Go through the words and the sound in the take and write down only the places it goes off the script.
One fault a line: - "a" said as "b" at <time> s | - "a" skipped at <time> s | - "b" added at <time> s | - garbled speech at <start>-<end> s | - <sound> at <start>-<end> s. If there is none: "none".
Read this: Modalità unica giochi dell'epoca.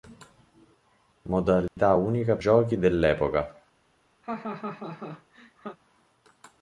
- dropout at 1.7-1.8 s
- laugh at 4.2-5.8 s